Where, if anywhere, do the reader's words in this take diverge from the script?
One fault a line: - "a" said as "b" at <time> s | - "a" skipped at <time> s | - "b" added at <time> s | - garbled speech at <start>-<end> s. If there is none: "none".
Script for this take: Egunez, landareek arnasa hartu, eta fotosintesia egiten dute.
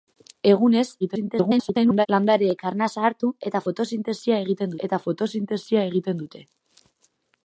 - garbled speech at 1.0-2.1 s
- "eta fotosintesia egiten" added at 4.9 s